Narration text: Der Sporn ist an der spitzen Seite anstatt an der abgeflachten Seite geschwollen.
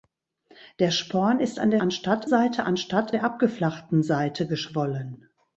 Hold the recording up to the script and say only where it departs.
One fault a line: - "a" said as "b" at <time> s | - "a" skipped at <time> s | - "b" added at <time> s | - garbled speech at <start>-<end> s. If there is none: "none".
- "spitzen" said as "anstatt" at 1.8 s
- "an" skipped at 3.1 s